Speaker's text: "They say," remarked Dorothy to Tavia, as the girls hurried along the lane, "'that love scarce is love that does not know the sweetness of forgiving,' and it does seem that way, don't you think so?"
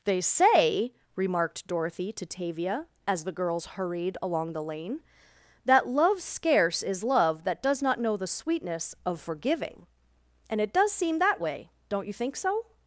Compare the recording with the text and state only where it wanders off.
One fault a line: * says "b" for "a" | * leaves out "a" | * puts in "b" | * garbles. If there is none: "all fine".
all fine